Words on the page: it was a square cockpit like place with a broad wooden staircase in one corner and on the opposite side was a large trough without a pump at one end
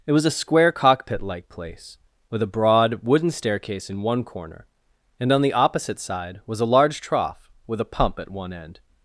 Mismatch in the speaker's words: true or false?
true